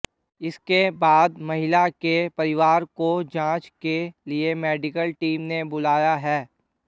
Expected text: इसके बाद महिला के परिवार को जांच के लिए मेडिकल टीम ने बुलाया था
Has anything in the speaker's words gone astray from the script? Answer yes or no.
yes